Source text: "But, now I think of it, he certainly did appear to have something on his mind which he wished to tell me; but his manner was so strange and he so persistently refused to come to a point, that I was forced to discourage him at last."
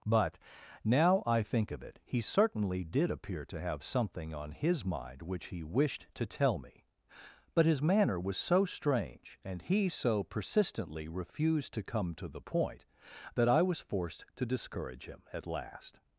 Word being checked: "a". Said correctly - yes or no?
no